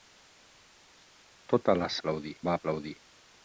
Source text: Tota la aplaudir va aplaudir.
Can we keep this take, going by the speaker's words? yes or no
yes